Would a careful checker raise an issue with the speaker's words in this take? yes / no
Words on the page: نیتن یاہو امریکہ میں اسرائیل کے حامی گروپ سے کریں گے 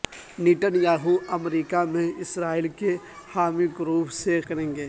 no